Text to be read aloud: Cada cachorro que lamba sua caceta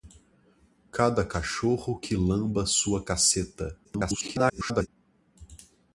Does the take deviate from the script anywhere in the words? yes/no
yes